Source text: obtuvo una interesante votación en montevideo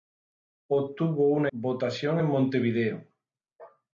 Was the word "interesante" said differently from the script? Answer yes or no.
yes